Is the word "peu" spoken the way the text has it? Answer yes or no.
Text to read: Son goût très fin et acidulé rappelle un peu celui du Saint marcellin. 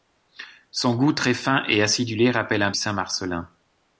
no